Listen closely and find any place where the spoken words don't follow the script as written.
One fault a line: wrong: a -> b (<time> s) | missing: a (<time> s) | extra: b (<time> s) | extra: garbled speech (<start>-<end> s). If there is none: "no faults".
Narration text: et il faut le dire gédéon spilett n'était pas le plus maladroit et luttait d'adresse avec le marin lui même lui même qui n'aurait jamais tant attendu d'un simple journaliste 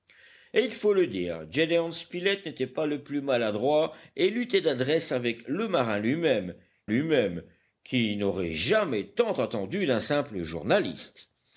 no faults